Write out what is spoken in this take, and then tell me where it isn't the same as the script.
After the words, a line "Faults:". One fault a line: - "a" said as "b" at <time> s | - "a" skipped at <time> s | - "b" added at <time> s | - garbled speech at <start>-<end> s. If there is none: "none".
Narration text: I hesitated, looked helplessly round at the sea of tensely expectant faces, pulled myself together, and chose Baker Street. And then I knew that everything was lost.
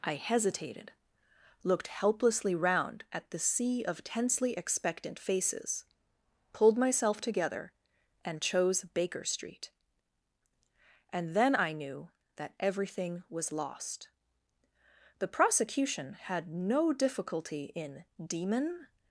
I hesitated, looked helplessly round at the sea of tensely expectant faces, pulled myself together, and chose Baker Street. And then I knew that everything was lost. The prosecution had no difficulty in demon
Faults:
- "The prosecution had no difficulty in demon" added at 15.2 s